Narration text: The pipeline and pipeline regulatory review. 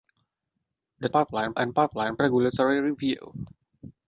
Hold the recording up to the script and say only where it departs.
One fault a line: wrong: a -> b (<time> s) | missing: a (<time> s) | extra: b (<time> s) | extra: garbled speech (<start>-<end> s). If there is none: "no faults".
no faults